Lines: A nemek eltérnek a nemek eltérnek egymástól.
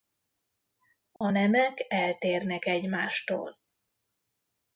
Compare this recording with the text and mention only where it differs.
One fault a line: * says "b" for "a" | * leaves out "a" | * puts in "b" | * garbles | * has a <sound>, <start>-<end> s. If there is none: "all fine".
* has a dropout, 1.2-1.2 s
* leaves out "a nemek eltérnek"